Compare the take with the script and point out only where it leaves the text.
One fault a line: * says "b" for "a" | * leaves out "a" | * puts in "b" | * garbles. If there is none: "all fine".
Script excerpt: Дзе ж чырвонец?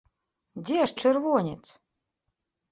all fine